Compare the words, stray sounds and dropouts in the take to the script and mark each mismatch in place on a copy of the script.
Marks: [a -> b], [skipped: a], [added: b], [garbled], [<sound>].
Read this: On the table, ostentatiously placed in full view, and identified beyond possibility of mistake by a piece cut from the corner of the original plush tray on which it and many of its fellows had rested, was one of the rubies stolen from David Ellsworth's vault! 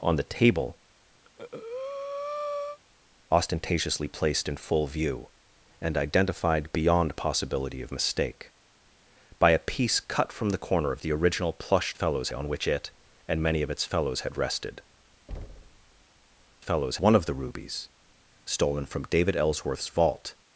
On the table, [breath] ostentatiously placed in full view, and identified beyond possibility of mistake by a piece cut from the corner of the original plush [tray -> fellows] on which it and many of its fellows had rested, [thud] [was -> fellows] one of the rubies stolen from David Ellsworth's vault!